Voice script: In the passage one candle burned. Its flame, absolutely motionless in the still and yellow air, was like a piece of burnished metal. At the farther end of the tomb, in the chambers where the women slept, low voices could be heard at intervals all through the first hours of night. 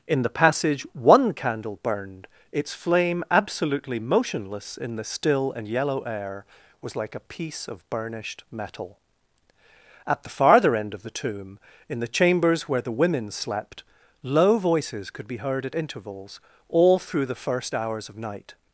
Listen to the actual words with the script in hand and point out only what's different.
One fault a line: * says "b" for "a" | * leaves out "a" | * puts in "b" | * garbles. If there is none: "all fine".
all fine